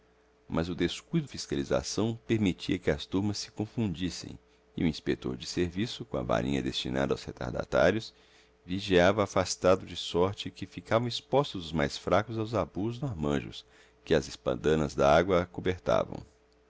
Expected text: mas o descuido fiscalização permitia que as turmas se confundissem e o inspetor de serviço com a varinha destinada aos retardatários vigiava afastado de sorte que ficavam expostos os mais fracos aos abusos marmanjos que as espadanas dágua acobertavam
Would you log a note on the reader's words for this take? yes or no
no